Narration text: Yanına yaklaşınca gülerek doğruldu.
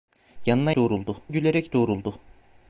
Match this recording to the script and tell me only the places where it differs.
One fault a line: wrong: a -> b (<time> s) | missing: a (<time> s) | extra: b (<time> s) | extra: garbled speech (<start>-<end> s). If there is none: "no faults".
wrong: yaklaşınca -> doğruldu (0.7 s)